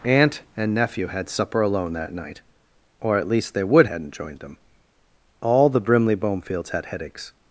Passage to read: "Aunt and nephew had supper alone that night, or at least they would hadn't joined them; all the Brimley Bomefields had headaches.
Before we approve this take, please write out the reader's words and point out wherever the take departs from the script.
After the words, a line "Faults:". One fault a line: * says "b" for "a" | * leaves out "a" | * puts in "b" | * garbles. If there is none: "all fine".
"Aunt and nephew had supper alone that night, or at least they would hadn't joined them; all the Brimley Bomefields had headaches.
Faults:
all fine